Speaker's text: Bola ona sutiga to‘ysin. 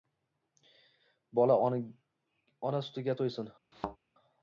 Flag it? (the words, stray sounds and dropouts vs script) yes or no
yes